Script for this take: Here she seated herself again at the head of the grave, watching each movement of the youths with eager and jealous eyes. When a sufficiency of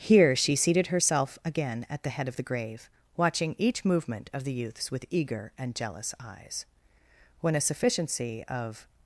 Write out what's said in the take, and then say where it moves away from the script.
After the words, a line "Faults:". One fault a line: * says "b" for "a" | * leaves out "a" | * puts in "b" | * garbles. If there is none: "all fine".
Here she seated herself again at the head of the grave, watching each movement of the youths with eager and jealous eyes. When a sufficiency of
Faults:
all fine